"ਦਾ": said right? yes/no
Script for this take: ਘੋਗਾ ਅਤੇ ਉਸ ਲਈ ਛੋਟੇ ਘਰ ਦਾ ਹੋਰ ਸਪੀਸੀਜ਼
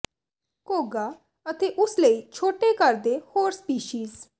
no